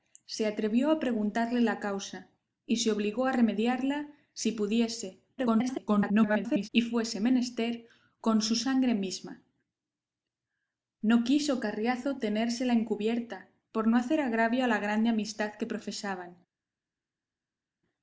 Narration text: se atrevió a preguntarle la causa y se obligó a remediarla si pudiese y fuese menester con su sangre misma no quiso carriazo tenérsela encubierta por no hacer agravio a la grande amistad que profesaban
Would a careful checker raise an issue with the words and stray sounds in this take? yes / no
yes